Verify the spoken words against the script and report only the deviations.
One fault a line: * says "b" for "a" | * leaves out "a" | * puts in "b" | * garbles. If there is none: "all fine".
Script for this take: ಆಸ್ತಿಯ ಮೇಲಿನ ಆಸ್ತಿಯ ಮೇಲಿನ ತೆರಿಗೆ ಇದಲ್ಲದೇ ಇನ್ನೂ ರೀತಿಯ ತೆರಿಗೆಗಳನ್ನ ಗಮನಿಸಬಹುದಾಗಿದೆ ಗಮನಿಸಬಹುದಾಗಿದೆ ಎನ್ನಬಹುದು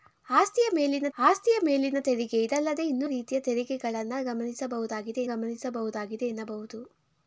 all fine